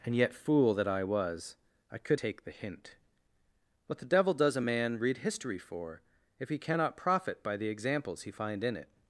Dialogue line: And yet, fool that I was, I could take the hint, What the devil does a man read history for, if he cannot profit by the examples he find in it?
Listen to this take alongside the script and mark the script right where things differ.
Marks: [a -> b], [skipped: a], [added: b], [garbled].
And yet, fool that I was, I could take the hint, What the devil does a man read history for, if he cannot profit by the examples he find in it?